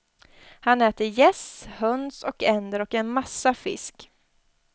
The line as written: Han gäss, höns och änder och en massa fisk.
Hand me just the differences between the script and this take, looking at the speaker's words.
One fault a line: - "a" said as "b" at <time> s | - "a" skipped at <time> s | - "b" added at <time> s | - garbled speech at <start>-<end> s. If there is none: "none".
- "äter" added at 0.8 s